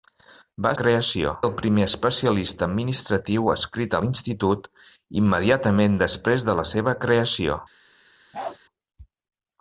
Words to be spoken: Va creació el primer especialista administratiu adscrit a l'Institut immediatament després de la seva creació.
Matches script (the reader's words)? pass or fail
pass